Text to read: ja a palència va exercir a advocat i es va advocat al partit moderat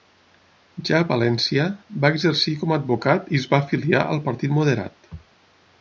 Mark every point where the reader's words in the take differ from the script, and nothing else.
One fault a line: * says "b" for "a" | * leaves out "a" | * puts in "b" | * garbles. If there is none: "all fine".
* puts in "com"
* says "afiliar" for "advocat"